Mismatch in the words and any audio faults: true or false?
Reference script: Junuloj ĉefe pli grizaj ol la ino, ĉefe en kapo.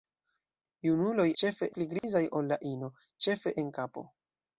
true